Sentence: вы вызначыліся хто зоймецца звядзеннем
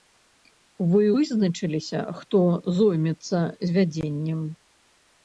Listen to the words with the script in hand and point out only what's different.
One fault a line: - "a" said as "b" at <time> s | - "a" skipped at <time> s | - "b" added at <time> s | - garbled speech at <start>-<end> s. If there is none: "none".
none